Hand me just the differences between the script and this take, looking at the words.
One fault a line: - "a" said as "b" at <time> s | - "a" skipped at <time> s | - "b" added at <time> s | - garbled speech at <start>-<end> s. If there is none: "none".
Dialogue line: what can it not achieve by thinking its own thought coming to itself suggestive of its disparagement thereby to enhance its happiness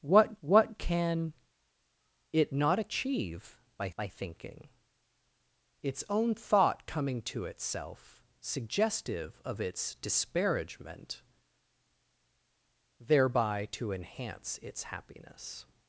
- "what" added at 0.4 s
- "by" added at 4.0 s